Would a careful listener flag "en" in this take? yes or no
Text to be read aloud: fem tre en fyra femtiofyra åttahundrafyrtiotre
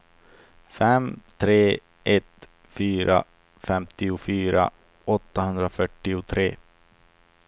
yes